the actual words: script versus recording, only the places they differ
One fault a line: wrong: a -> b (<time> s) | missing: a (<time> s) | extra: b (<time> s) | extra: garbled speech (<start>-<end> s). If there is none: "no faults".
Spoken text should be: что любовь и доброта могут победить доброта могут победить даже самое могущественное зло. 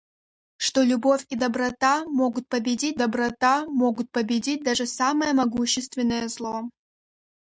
no faults